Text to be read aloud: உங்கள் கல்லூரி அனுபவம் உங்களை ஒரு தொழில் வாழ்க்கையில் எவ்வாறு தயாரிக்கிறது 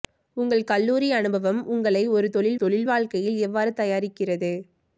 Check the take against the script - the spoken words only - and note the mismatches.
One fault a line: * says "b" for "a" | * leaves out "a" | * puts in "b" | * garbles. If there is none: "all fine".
* puts in "தொழில்"